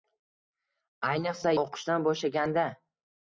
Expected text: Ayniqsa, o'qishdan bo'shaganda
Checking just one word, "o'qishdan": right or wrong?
right